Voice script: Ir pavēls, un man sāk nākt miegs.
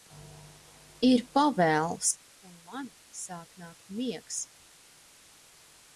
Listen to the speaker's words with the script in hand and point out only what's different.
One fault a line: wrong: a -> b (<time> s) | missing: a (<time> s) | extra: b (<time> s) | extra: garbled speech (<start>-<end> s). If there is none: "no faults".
no faults